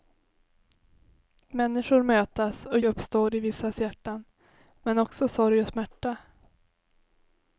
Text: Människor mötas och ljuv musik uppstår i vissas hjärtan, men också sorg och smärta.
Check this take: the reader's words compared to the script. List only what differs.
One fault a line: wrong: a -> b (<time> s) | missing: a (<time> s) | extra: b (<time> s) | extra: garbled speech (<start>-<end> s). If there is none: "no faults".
missing: ljuv musik (2.8 s)